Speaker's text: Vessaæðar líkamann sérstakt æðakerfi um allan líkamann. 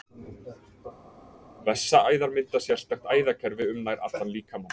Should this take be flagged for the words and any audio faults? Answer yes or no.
yes